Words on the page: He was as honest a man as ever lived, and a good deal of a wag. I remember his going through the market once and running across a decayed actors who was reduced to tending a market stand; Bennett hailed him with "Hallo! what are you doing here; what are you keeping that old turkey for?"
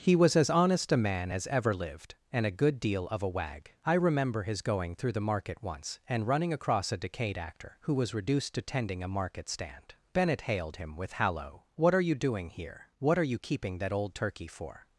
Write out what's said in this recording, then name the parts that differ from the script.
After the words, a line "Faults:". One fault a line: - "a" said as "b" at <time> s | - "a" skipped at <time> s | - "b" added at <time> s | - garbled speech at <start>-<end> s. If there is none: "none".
He was as honest a man as ever lived, and a good deal of a wag. I remember his going through the market once and running across a decayed actor who was reduced to tending a market stand; Bennett hailed him with "Hallo! what are you doing here; what are you keeping that old turkey for?"
Faults:
- "actors" said as "actor" at 7.4 s